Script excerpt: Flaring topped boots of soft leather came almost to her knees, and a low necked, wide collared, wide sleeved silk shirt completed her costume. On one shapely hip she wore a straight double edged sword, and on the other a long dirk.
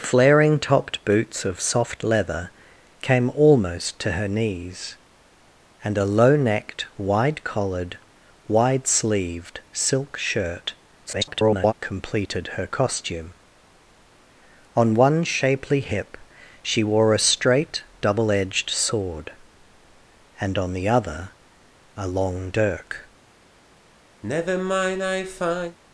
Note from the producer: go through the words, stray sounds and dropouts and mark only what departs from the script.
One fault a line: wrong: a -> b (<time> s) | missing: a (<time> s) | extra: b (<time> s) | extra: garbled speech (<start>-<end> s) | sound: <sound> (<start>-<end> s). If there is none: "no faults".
extra: garbled speech (11.0-11.7 s)
sound: sigh (24.2-25.8 s)